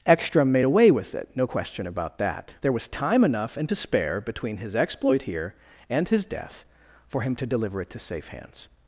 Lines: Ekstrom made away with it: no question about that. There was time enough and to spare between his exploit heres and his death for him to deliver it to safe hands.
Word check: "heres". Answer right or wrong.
wrong